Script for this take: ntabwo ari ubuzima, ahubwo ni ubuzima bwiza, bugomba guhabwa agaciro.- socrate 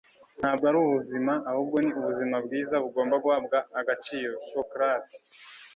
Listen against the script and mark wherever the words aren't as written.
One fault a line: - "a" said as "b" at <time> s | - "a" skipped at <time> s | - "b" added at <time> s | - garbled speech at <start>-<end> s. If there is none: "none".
none